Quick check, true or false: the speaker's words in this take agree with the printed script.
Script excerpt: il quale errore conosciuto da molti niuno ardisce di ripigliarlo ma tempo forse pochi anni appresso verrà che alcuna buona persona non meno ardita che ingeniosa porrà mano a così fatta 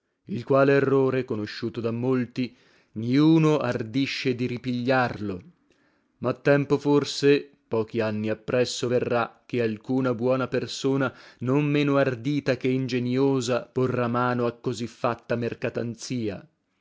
true